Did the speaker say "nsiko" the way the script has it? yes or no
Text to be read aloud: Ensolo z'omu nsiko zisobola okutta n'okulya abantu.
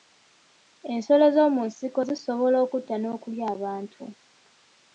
yes